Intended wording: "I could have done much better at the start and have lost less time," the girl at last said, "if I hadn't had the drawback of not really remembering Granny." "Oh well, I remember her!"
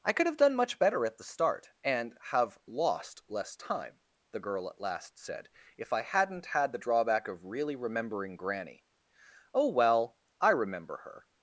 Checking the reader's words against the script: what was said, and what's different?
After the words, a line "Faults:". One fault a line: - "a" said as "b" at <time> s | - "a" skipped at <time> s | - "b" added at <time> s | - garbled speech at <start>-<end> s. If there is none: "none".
"I could have done much better at the start and have lost less time," the girl at last said, "if I hadn't had the drawback of really remembering Granny." "Oh well, I remember her!"
Faults:
- "not" skipped at 7.4 s